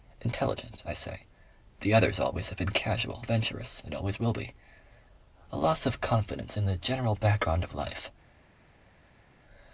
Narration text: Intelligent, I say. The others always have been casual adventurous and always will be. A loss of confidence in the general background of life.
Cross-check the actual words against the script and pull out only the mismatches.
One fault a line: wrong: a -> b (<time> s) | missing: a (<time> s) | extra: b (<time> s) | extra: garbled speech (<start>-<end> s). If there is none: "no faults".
no faults